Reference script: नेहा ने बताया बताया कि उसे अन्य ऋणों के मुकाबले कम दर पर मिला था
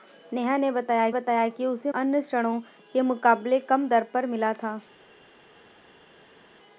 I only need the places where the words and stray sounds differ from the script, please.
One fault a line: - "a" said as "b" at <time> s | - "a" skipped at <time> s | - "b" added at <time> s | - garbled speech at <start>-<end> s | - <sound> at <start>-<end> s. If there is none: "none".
none